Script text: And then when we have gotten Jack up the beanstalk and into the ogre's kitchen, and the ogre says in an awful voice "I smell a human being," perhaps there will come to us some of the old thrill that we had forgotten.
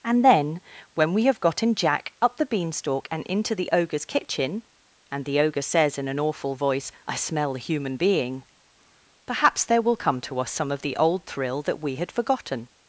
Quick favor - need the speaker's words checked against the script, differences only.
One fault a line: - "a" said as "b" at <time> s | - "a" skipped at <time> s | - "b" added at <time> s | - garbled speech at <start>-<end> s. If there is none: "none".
none